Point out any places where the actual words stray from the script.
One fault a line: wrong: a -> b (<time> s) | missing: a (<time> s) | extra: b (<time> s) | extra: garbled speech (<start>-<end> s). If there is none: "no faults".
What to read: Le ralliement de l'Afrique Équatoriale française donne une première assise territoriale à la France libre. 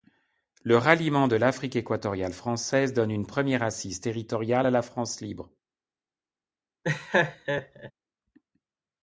no faults